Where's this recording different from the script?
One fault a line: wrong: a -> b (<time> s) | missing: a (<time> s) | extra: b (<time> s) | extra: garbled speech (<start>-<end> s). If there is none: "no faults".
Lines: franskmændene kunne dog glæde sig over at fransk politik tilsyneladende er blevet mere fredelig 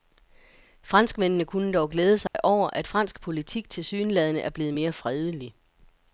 no faults